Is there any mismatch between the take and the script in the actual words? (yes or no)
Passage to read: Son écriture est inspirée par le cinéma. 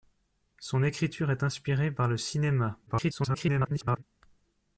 yes